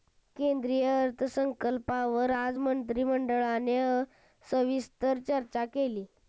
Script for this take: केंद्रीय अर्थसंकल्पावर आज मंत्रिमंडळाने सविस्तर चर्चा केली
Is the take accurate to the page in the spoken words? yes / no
yes